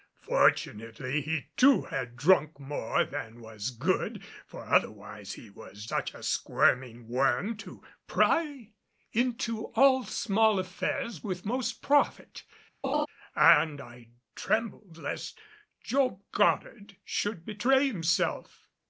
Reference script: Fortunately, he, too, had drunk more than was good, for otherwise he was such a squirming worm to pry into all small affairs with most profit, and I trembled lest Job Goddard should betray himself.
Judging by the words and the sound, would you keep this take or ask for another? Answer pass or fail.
fail